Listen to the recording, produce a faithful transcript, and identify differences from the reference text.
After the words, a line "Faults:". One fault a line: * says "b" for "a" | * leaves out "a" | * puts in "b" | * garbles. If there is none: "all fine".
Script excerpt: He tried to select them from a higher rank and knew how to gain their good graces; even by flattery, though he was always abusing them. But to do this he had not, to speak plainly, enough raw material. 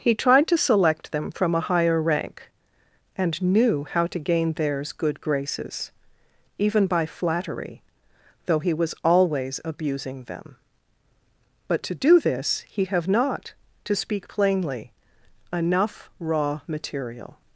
He tried to select them from a higher rank and knew how to gain theirs good graces; even by flattery, though he was always abusing them. But to do this he have not, to speak plainly, enough raw material.
Faults:
* says "theirs" for "their"
* says "have" for "had"